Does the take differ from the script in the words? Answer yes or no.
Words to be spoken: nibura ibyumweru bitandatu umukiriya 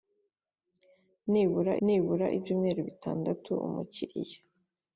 yes